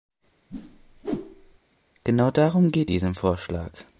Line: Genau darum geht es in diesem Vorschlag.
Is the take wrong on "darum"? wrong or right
right